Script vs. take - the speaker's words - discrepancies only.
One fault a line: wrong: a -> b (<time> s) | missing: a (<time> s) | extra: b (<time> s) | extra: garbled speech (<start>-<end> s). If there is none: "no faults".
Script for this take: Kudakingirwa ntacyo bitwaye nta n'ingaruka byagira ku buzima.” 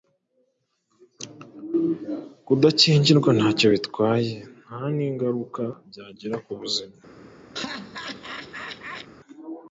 no faults